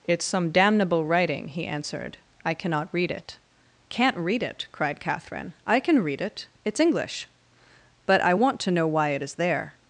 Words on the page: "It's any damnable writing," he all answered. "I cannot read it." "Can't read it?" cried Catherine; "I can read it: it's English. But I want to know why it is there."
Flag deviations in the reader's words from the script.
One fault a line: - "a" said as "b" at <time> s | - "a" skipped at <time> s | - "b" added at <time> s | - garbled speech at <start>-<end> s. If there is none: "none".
- "any" said as "some" at 0.2 s
- "all" skipped at 1.6 s